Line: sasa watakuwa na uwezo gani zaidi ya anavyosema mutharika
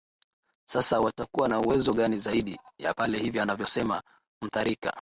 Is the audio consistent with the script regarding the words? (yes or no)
no